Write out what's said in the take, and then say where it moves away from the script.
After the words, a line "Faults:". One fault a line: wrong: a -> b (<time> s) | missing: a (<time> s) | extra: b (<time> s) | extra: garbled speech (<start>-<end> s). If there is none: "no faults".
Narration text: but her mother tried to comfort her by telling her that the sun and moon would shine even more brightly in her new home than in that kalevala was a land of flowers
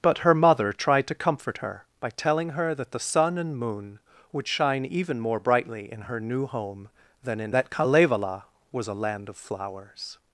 but her mother tried to comfort her by telling her that the sun and moon would shine even more brightly in her new home than in that kalevala was a land of flowers
Faults:
no faults